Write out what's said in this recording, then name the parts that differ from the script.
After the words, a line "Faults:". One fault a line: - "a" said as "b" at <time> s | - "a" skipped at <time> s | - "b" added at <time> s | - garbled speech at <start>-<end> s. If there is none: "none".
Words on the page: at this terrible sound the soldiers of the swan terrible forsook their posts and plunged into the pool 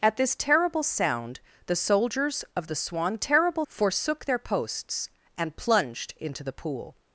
at this terrible sound the soldiers of the swan terrible forsook their posts and plunged into the pool
Faults:
none